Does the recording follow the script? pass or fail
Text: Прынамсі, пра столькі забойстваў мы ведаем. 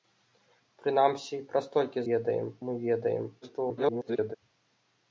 fail